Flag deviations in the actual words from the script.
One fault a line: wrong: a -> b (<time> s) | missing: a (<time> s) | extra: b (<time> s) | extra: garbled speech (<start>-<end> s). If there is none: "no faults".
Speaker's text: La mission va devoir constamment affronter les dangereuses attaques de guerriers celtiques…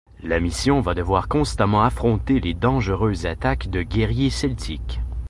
no faults